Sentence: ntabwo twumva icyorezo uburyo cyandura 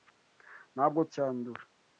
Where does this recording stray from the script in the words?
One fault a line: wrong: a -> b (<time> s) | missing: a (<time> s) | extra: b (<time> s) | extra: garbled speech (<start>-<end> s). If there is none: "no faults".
missing: twumva icyorezo uburyo (1.0 s)